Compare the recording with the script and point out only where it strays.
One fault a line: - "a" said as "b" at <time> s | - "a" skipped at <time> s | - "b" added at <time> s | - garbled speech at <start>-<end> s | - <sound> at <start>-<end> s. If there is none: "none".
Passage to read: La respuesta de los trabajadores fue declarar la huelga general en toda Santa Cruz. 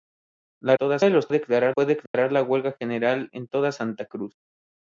- "respuesta" said as "toda" at 0.7 s
- "trabajadores" said as "declarar" at 1.3 s
- dropout at 2.1-2.1 s